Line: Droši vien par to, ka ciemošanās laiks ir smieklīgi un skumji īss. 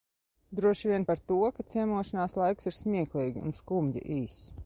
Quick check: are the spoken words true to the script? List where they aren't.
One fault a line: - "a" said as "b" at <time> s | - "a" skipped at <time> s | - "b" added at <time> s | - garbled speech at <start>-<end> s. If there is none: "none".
none